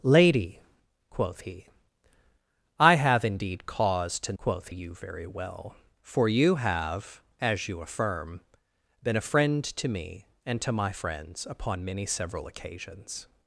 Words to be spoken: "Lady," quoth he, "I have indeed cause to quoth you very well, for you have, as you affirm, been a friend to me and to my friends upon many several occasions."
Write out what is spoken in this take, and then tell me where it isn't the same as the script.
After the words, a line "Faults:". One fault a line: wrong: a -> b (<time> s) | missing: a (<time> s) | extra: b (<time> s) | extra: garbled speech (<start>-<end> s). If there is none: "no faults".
"Lady," quoth he, "I have indeed cause to quoth you very well, for you have, as you affirm, been a friend to me and to my friends upon many several occasions."
Faults:
no faults